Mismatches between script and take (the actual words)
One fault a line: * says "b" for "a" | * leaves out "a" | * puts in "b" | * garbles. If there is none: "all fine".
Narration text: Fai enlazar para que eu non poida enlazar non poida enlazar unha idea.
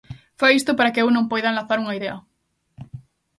* says "isto" for "enlazar"
* leaves out "non poida enlazar"